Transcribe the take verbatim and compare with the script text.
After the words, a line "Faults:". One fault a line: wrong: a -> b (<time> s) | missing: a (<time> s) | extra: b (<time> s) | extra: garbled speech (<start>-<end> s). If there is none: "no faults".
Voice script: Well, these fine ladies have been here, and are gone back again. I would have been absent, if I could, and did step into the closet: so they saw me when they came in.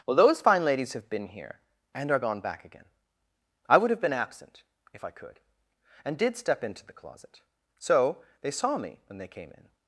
Well, those fine ladies have been here, and are gone back again. I would have been absent, if I could, and did step into the closet: so they saw me when they came in.
Faults:
wrong: these -> those (0.1 s)